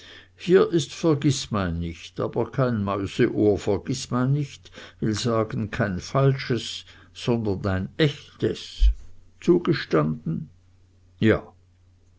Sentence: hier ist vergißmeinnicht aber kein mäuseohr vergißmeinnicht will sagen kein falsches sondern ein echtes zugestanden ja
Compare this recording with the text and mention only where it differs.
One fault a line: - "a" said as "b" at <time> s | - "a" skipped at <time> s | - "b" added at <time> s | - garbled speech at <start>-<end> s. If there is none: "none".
none